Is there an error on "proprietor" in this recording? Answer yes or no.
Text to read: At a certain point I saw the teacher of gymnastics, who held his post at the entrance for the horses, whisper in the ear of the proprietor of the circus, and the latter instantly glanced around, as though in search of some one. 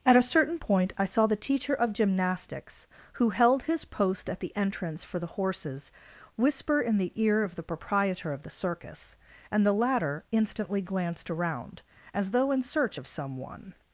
no